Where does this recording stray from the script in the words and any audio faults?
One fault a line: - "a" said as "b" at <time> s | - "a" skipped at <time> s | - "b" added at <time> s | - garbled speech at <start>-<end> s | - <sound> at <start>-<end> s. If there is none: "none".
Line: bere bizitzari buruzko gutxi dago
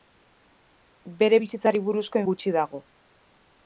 none